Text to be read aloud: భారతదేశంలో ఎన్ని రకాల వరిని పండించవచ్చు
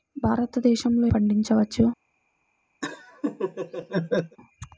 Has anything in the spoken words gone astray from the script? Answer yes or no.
yes